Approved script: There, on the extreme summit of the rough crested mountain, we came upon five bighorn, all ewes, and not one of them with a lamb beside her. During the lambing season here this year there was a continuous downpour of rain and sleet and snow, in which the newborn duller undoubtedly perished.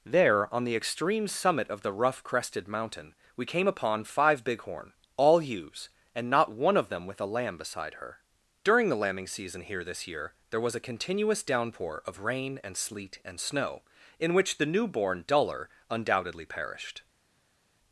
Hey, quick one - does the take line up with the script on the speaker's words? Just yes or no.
yes